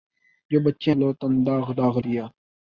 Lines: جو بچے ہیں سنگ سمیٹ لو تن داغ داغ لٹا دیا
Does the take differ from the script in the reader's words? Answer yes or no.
yes